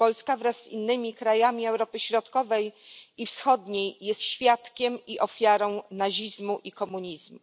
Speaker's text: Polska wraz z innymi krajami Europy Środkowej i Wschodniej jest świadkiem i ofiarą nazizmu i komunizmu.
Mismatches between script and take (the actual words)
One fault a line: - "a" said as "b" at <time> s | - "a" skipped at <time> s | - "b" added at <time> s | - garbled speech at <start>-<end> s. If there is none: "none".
none